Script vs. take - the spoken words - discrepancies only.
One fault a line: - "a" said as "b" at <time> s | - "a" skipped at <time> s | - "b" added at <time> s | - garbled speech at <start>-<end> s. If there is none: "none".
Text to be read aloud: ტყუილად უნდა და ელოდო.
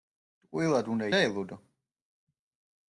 none